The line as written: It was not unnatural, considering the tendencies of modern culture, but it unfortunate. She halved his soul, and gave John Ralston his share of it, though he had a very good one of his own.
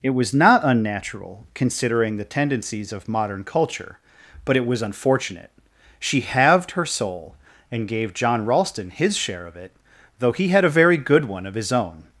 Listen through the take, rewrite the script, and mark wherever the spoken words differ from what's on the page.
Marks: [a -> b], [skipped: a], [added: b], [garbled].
It was not unnatural, considering the tendencies of modern culture, but it [added: was] unfortunate. She halved [his -> her] soul, and gave John Ralston his share of it, though he had a very good one of his own.